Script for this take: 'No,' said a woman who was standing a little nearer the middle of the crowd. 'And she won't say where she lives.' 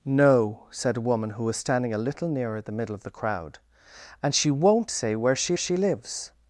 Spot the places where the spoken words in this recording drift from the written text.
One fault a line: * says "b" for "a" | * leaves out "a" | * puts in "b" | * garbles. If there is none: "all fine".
* puts in "she"